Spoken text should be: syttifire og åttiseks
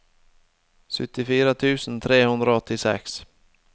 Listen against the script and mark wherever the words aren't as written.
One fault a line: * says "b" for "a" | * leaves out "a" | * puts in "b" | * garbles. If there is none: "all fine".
* puts in "tusen tre hundre"